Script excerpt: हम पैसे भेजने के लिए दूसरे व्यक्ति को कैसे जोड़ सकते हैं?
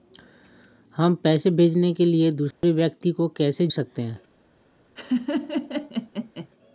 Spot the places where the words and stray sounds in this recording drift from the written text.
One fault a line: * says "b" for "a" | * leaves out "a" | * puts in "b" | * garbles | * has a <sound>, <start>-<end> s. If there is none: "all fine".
* has a dropout, 2.5-2.6 s
* leaves out "जोड़"
* has a laugh, 5.0-6.5 s